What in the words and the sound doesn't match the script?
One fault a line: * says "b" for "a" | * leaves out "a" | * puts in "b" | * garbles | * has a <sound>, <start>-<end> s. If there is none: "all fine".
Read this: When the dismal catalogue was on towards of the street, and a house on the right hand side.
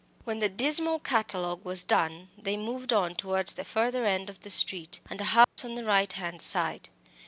* puts in "done they moved"
* puts in "the further end"
* has a dropout, 5.4-5.6 s